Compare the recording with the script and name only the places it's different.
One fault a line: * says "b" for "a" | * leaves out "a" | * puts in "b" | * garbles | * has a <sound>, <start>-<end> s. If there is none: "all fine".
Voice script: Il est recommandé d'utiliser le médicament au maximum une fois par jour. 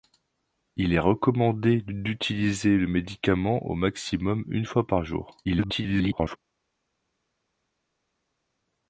* garbles